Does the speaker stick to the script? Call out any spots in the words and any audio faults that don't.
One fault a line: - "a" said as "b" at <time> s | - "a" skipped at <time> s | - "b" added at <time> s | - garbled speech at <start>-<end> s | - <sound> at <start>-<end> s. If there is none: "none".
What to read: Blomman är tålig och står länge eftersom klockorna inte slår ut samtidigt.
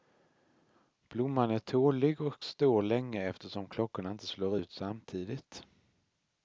none